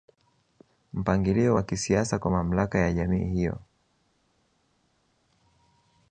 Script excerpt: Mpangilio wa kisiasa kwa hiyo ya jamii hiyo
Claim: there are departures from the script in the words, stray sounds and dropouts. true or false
true